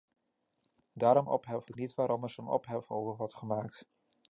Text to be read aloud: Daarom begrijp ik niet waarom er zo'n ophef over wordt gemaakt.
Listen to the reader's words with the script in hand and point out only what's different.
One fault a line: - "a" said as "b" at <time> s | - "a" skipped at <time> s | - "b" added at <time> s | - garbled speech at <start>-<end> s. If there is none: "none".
- "begrijp" said as "ophef" at 1.3 s